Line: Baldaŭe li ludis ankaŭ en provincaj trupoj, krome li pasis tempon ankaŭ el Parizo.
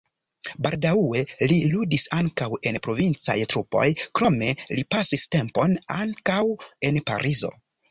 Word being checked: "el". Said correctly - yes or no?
no